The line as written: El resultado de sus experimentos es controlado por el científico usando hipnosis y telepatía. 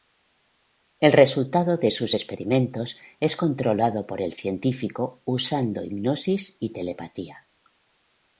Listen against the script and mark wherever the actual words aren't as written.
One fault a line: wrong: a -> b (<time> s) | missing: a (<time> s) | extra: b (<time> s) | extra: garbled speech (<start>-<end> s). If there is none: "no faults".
no faults